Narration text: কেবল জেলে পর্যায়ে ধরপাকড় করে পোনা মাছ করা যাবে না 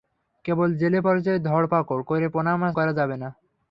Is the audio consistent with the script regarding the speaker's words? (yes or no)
yes